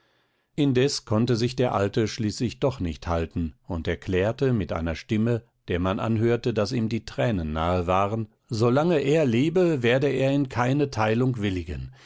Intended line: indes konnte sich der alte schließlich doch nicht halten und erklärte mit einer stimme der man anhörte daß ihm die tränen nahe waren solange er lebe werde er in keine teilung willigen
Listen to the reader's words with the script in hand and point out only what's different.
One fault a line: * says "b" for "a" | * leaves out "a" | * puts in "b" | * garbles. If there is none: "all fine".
all fine